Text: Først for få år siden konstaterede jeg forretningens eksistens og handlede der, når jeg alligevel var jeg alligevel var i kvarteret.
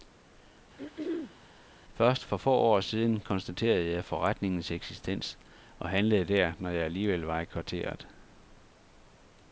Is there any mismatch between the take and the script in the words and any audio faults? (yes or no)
yes